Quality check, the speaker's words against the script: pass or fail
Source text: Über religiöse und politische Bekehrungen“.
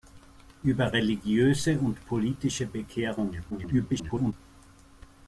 fail